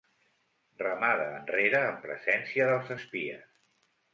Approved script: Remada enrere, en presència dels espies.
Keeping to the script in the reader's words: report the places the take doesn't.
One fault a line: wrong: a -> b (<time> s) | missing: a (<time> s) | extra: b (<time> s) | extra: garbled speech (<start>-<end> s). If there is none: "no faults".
no faults